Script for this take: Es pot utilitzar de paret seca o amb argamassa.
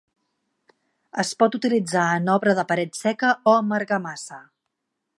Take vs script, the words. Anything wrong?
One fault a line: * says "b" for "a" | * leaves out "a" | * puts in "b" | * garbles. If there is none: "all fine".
* puts in "en obra"